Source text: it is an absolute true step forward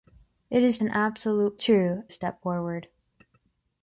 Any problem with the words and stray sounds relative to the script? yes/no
no